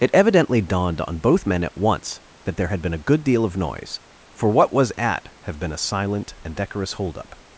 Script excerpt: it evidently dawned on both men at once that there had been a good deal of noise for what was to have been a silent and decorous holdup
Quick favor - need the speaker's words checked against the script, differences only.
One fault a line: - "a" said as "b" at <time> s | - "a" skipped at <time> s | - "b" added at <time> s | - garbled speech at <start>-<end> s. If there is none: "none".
- "to" said as "at" at 5.0 s